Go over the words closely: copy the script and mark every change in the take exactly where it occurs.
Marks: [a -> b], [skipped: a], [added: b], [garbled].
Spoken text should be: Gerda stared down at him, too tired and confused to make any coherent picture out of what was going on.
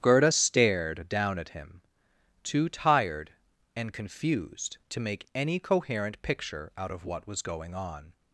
Gerda stared down at him, too tired and confused to make any coherent picture out of what was going on.